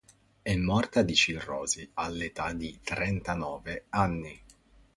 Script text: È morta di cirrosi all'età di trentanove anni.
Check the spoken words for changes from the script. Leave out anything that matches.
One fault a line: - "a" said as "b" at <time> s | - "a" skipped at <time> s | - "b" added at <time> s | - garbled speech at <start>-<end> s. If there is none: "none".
none